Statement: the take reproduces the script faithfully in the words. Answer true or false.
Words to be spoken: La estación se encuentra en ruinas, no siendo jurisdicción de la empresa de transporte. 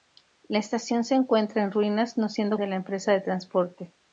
false